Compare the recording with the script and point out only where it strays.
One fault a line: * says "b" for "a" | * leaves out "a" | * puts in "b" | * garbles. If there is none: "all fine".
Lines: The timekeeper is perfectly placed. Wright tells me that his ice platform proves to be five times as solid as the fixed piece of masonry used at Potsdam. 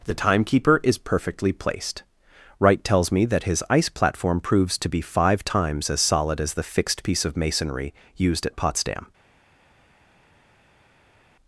all fine